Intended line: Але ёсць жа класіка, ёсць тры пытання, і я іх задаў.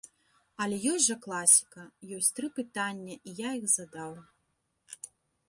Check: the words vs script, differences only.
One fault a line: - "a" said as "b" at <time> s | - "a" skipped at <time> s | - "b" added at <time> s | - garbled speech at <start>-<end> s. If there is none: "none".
none